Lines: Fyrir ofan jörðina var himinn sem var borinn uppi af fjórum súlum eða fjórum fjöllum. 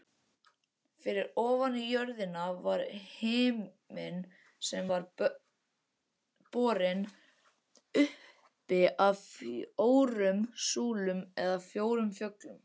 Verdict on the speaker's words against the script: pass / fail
pass